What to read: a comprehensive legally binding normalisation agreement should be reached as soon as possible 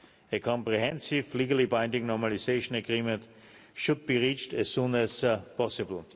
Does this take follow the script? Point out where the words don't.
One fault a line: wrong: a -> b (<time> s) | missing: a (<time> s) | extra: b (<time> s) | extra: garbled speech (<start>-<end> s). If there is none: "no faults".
no faults